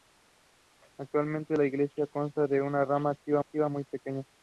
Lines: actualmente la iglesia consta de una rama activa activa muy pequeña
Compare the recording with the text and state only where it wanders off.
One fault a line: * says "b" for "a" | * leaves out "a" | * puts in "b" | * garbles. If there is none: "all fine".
all fine